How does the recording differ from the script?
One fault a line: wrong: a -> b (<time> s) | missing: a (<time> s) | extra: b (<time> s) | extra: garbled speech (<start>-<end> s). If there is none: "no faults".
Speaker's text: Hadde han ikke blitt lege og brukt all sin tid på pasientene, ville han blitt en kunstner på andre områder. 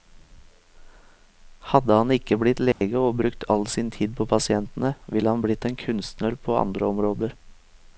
no faults